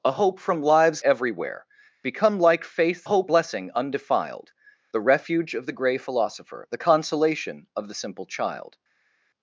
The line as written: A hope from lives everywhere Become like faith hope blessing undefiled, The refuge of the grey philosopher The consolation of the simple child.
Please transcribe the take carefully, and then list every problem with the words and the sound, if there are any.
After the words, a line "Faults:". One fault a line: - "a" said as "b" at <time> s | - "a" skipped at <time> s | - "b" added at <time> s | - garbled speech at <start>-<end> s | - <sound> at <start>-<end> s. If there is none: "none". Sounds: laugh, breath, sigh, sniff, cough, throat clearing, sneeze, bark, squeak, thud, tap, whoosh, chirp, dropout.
A hope from lives everywhere Become like faith hope blessing undefiled, The refuge of the grey philosopher The consolation of the simple child.
Faults:
none